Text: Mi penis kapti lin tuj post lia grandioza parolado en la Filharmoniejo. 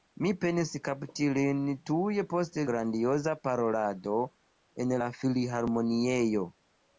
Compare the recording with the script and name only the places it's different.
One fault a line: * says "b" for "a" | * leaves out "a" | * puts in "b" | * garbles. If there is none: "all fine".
* leaves out "lia"